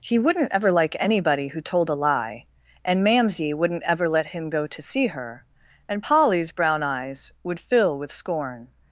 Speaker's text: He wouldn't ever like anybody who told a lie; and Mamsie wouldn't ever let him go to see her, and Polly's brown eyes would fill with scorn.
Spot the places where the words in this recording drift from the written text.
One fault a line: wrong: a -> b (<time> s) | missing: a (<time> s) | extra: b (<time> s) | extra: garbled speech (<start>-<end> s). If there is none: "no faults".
no faults